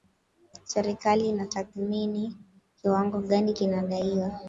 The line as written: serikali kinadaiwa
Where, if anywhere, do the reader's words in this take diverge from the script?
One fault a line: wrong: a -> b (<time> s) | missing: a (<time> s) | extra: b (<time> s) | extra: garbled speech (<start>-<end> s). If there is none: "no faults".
extra: inatathmini kiwango gani (1.3 s)